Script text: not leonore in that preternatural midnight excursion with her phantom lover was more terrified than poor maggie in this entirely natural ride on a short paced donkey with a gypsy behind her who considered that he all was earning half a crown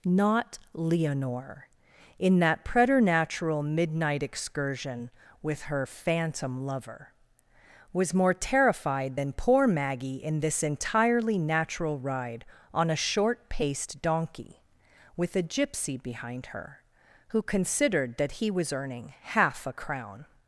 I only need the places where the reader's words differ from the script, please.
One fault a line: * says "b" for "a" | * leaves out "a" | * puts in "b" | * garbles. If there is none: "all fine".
* leaves out "all"